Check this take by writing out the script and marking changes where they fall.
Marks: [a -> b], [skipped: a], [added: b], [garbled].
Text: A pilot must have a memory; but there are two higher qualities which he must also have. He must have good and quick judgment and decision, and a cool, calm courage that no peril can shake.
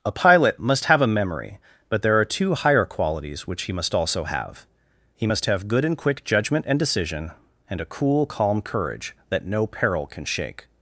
A pilot must have a memory; but there are two higher qualities which he must also have. He must have good and quick judgment and decision, and a cool, calm courage that no peril can shake.